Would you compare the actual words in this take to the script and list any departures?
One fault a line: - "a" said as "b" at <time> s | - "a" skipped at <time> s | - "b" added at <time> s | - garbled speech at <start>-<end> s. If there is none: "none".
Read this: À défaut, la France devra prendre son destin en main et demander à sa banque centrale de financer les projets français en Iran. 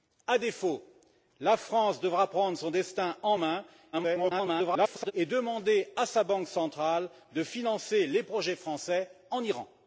- garbled speech at 3.9-5.1 s